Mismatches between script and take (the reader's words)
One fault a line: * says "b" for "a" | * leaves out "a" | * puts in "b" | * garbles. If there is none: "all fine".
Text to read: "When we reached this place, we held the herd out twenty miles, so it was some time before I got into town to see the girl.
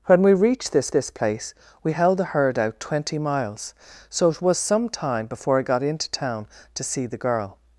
* puts in "this"